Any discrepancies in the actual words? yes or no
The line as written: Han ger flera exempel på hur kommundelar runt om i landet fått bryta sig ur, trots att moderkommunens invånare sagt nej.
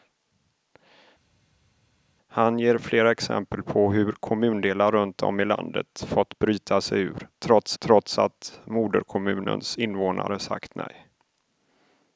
yes